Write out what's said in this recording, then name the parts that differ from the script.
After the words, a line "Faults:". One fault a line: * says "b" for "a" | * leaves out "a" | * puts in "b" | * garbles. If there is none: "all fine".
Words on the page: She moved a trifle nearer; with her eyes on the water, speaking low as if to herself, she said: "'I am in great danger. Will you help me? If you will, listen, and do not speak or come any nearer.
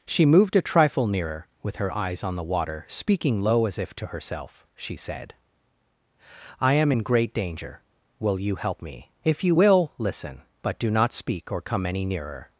She moved a trifle nearer; with her eyes on the water, speaking low as if to herself, she said: "'I am in great danger. Will you help me? If you will, listen, but do not speak or come any nearer.
Faults:
* says "but" for "and"